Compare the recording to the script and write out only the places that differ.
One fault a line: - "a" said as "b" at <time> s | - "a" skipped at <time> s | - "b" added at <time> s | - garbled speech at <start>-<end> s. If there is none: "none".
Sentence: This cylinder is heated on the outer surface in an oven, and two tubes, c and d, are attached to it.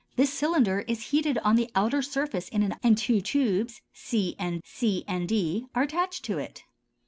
- "oven" skipped at 2.7 s
- "c and" added at 4.6 s